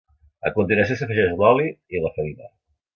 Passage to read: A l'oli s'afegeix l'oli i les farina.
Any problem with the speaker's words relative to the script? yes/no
yes